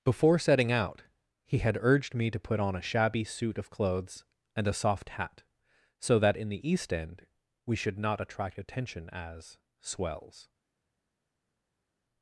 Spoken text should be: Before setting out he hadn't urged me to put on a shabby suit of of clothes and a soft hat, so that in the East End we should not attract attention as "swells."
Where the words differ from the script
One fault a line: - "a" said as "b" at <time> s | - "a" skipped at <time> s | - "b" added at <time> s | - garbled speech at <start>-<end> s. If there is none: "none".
- "hadn't" said as "had" at 1.6 s
- "of" skipped at 3.7 s